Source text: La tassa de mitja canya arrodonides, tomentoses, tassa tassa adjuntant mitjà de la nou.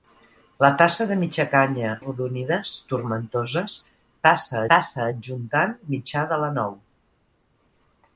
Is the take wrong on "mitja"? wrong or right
right